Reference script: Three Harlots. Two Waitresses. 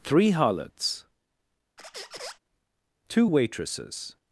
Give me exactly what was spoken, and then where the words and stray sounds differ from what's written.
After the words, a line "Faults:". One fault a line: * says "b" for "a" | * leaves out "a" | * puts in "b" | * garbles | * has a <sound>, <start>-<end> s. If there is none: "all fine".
Three Harlots. Two Waitresses.
Faults:
* has a squeak, 1.8-2.4 s